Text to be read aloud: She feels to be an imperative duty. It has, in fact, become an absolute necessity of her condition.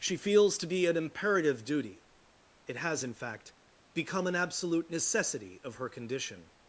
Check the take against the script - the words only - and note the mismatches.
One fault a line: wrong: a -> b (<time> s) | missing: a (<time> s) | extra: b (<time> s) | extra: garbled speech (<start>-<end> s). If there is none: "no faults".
no faults